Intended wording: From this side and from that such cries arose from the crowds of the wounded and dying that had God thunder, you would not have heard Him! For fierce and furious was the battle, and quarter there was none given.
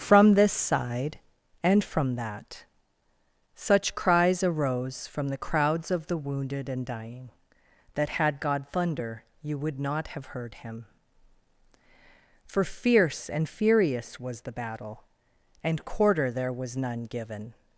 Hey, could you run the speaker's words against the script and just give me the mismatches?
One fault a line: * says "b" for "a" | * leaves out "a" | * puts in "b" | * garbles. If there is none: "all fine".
all fine